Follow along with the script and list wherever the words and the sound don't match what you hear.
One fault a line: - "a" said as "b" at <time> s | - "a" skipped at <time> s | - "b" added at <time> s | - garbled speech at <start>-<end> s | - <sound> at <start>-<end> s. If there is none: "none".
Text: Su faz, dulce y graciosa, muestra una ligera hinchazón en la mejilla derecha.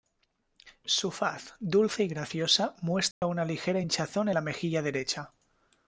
- dropout at 3.1-3.2 s
- "en" skipped at 4.3 s